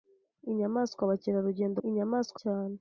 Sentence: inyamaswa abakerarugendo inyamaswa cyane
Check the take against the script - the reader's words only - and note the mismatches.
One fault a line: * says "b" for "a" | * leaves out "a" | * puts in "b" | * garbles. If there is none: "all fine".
all fine